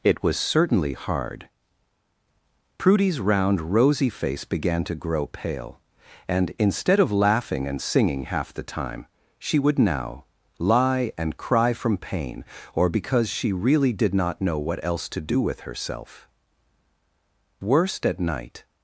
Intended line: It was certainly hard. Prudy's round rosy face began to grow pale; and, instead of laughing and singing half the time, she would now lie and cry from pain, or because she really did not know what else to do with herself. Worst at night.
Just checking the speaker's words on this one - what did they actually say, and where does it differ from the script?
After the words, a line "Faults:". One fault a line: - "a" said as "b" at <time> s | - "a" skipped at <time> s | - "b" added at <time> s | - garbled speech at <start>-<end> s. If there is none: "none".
It was certainly hard. Prudy's round rosy face began to grow pale; and, instead of laughing and singing half the time, she would now lie and cry from pain, or because she really did not know what else to do with herself. Worst at night.
Faults:
none